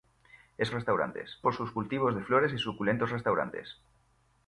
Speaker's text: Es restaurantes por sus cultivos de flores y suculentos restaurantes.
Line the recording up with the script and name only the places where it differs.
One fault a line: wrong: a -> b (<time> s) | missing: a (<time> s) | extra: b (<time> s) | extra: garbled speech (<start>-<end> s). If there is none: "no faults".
no faults